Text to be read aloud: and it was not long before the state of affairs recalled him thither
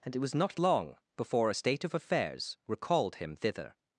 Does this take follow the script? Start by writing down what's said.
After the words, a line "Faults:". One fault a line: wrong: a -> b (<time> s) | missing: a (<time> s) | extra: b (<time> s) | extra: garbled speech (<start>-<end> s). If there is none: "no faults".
and it was not long before a state of affairs recalled him thither
Faults:
wrong: the -> a (1.5 s)